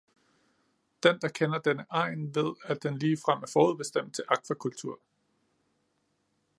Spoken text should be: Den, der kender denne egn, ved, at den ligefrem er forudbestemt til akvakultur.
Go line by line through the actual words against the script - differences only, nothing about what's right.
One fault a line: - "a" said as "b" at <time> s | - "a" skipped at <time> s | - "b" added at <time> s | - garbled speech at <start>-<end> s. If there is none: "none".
none